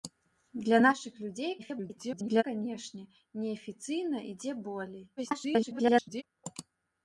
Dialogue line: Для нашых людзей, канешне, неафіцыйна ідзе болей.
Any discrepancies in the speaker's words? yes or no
yes